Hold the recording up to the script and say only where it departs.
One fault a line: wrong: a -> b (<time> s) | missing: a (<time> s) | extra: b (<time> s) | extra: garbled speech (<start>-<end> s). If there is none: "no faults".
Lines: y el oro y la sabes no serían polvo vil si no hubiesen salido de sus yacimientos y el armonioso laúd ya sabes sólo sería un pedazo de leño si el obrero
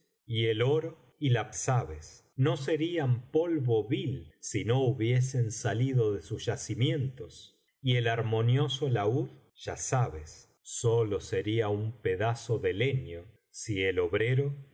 no faults